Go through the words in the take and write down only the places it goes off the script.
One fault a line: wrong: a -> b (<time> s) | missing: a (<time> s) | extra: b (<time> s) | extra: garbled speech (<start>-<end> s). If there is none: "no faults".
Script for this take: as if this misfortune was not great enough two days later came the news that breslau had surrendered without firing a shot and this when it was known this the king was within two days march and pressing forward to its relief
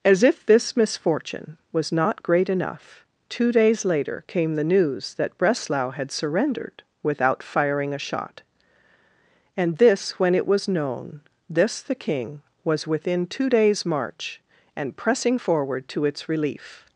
no faults